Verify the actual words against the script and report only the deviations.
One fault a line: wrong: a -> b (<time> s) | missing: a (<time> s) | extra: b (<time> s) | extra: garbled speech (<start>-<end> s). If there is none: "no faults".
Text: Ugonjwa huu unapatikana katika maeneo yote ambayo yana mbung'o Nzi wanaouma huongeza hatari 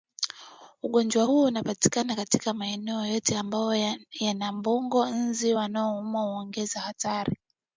no faults